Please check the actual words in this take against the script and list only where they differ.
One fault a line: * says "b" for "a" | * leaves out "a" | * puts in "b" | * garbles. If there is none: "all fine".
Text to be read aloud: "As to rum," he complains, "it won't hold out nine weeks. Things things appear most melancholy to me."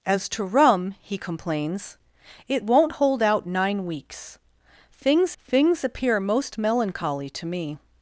all fine